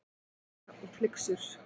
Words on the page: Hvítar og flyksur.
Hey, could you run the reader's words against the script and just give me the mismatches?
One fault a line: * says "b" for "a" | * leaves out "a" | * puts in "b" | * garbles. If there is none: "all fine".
all fine